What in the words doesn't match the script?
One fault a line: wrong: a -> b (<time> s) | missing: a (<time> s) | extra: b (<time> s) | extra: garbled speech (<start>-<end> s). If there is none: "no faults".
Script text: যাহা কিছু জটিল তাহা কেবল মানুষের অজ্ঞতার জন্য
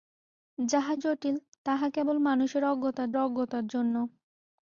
missing: কিছু (0.9 s)
extra: অজ্ঞতার (3.2 s)